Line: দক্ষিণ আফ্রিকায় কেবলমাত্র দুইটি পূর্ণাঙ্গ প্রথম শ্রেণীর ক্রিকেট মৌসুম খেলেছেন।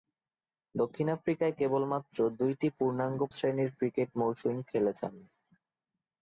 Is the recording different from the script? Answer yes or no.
yes